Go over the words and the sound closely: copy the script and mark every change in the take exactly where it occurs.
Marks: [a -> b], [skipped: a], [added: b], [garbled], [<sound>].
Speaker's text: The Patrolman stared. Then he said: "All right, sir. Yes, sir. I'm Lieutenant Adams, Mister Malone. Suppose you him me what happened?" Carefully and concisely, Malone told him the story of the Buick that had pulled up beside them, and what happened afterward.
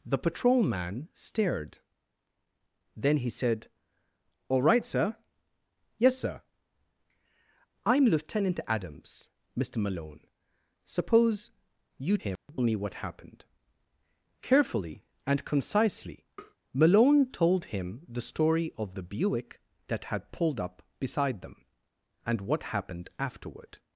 The Patrolman stared. Then he said: "All right, sir. Yes, sir. I'm Lieutenant Adams, Mister Malone. Suppose you him [dropout] me what happened?" Carefully and concisely, [tap] Malone told him the story of the Buick that had pulled up beside them, and what happened afterward.